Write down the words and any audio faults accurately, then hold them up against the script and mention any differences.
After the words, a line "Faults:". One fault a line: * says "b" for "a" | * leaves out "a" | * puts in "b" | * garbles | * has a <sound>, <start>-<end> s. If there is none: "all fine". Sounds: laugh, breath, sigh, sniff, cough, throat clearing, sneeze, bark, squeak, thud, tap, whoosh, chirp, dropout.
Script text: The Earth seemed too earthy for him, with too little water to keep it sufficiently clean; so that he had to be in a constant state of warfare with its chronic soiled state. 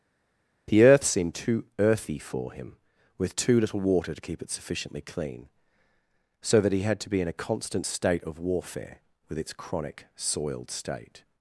The Earth seemed too earthy for him, with too little water to keep it sufficiently clean; so that he had to be in a constant state of warfare with its chronic soiled state.
Faults:
all fine